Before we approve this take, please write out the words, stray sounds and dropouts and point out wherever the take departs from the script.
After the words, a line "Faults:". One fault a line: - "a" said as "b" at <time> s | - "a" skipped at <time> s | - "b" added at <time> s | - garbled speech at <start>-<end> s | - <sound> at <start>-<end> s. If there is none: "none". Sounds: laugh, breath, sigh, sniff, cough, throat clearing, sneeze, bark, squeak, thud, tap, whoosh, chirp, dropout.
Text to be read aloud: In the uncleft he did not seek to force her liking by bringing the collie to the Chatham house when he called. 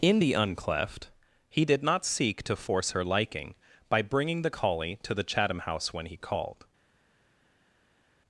In the uncleft he did not seek to force her liking by bringing the collie to the Chatham house when he called.
Faults:
none